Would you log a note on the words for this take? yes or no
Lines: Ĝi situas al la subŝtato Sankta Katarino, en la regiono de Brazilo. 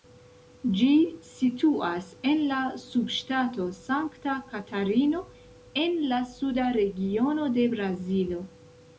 yes